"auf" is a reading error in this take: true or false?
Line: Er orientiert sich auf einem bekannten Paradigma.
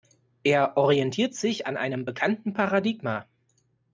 true